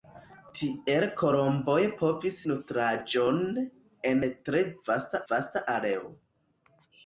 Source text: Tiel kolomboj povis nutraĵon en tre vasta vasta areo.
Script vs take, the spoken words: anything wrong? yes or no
no